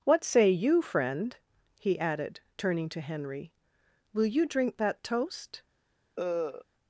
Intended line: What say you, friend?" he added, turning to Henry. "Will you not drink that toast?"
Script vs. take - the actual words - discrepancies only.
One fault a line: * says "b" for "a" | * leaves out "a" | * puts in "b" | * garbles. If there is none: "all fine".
* leaves out "not"